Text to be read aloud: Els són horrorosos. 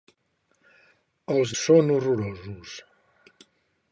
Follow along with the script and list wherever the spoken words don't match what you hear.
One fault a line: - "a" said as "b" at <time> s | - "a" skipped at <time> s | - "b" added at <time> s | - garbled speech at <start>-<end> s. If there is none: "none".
none